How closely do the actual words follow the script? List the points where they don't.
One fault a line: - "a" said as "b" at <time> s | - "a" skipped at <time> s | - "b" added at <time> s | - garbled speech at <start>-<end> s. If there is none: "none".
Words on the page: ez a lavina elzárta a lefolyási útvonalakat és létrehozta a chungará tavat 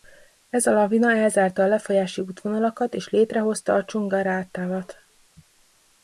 none